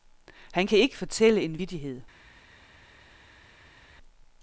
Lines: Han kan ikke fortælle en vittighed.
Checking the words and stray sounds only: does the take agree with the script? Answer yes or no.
yes